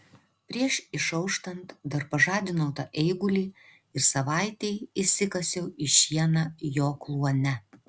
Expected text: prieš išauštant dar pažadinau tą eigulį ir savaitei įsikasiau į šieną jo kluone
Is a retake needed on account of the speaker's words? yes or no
no